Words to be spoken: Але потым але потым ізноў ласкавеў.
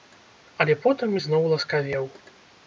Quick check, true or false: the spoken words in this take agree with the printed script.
false